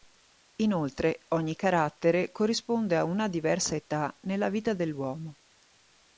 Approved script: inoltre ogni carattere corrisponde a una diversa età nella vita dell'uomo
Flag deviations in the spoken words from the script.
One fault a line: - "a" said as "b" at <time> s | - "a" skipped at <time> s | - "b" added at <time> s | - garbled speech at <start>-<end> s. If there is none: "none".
none